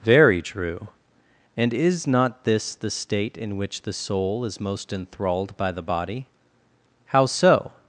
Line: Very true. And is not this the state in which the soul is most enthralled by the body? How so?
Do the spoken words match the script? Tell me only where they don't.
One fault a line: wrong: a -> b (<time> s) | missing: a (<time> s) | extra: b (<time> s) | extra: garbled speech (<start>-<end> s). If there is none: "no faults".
no faults